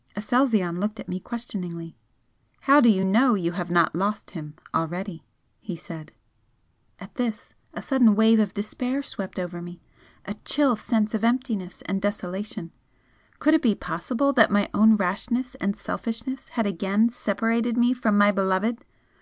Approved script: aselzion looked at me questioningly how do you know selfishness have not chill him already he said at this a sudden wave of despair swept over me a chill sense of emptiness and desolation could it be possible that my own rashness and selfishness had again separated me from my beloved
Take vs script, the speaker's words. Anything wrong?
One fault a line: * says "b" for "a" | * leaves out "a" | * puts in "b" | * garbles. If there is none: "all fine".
* says "you" for "selfishness"
* says "lost" for "chill"